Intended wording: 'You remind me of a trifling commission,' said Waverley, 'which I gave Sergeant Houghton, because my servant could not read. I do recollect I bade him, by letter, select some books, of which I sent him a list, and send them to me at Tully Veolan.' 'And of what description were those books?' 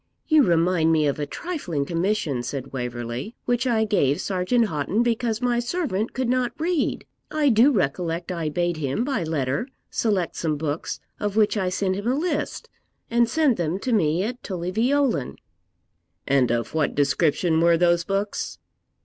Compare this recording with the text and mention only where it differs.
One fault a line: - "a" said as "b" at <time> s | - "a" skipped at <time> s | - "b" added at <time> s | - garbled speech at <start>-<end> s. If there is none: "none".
none